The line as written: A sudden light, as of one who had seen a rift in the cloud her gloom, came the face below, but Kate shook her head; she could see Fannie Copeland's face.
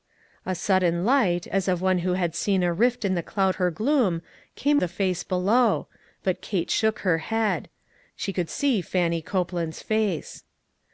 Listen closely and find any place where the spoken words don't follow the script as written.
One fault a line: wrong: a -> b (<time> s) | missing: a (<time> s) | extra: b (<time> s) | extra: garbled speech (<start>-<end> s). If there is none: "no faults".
no faults